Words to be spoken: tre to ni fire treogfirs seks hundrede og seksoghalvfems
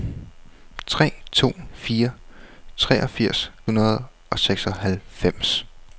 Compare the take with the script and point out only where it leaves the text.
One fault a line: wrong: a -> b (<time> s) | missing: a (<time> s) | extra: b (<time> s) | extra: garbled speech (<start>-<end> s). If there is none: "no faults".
missing: ni (1.5 s)
missing: seks (3.5 s)